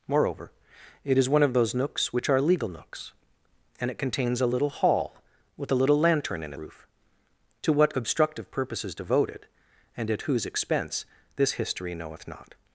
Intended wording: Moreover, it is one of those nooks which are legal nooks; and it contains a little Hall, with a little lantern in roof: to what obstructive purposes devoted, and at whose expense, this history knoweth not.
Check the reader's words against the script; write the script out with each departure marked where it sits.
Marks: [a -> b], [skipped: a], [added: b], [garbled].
Moreover, it is one of those nooks which are legal nooks; and it contains a little Hall, with a little lantern in roof: to what obstructive purposes devoted, and at whose expense, this history knoweth not.